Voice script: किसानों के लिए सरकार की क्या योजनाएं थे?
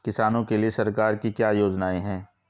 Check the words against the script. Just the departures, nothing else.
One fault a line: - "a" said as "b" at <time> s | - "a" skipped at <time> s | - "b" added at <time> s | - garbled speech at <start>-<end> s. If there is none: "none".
- "थे" said as "हैं" at 2.0 s